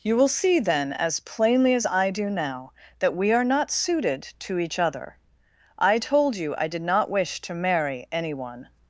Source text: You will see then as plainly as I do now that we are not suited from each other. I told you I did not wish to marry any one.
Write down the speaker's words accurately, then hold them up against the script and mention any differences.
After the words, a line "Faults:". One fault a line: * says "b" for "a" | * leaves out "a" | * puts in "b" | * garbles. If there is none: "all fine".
You will see then as plainly as I do now that we are not suited to each other. I told you I did not wish to marry any one.
Faults:
* says "to" for "from"